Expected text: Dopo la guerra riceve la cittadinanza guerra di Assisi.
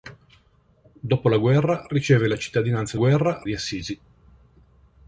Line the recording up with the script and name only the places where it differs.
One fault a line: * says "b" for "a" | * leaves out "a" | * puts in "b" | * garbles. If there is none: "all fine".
all fine